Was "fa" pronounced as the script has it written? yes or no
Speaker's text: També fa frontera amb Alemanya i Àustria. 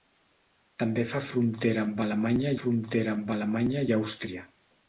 yes